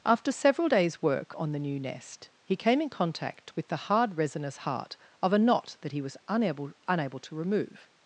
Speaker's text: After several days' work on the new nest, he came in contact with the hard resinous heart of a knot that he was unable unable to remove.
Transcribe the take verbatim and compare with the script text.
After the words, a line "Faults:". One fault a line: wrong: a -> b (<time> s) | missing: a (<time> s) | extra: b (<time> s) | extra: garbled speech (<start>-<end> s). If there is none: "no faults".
After several days' work on the new nest, he came in contact with the hard resinous heart of a knot that he was unable unable to remove.
Faults:
no faults